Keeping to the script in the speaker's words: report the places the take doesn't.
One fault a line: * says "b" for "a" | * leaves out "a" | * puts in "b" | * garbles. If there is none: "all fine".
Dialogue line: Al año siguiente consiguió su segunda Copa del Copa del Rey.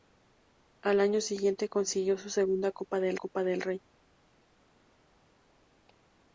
all fine